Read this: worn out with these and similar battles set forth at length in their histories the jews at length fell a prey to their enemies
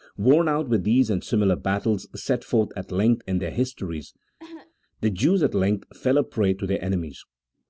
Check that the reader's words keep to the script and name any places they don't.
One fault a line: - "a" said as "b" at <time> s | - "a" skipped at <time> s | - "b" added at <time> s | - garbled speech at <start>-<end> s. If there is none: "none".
none